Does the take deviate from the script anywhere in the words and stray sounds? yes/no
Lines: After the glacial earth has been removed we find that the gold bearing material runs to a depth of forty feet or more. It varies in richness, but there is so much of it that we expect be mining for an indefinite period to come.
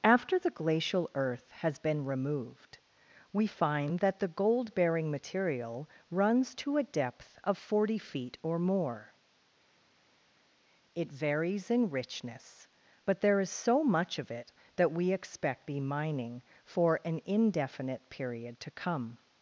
no